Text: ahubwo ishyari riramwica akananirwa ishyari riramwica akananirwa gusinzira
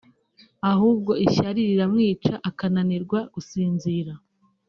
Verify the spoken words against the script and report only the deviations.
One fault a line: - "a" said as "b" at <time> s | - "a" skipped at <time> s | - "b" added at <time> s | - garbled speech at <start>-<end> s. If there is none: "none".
- "ishyari riramwica akananirwa" skipped at 3.2 s